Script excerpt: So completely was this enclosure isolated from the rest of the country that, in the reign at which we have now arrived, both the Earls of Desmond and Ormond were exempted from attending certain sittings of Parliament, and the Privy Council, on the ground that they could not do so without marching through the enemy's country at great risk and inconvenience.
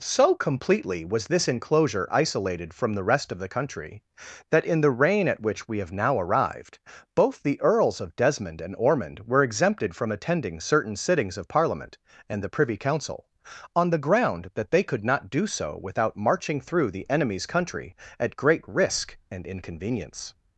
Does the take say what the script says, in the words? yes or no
yes